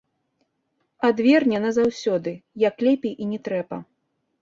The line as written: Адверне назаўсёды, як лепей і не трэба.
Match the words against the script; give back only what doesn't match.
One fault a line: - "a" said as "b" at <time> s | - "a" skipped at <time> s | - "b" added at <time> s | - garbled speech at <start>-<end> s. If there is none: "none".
none